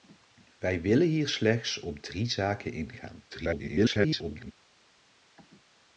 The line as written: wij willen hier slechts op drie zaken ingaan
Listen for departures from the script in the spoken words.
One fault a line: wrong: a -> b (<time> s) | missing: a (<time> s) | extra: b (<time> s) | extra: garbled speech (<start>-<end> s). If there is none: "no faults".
extra: garbled speech (3.3-4.5 s)